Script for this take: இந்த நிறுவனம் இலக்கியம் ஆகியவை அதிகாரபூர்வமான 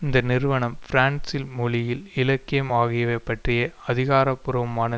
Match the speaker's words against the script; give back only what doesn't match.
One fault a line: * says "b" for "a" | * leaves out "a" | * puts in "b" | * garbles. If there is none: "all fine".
* puts in "பிரான்சில் மொழியில்"
* puts in "பற்றிய"